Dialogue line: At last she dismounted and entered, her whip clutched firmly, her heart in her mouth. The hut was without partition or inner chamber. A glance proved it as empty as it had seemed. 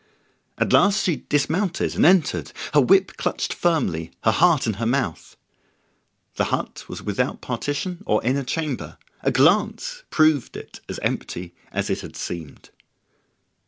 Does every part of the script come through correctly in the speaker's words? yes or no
yes